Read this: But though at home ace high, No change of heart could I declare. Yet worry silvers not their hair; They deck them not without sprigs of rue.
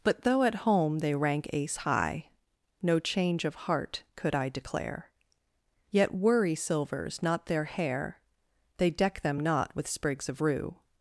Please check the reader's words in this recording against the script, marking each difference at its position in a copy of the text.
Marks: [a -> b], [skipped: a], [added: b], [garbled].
But though at home [added: they rank] ace high, No change of heart could I declare. Yet worry silvers not their hair; They deck them not [without -> with] sprigs of rue.